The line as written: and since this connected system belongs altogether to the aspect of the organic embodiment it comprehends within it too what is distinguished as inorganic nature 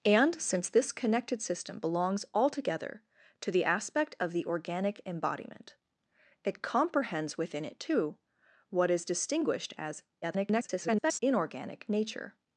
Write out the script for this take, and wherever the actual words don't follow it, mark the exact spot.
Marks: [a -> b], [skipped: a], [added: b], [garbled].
and since this connected system belongs altogether to the aspect of the organic embodiment it comprehends within it too what is distinguished as [garbled] inorganic nature